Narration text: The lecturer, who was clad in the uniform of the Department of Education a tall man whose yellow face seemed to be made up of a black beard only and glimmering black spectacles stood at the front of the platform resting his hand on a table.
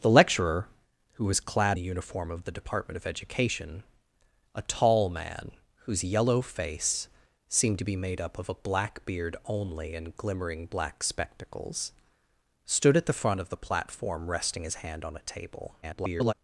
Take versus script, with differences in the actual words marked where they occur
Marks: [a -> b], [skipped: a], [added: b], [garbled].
The lecturer, who was clad [skipped: in] the uniform of the Department of Education a tall man whose yellow face seemed to be made up of a black beard only and glimmering black spectacles stood at the front of the platform resting his hand on a table. [garbled]